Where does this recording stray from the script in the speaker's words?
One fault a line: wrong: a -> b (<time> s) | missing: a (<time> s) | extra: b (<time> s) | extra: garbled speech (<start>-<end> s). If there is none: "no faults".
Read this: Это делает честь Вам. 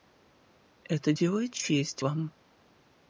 no faults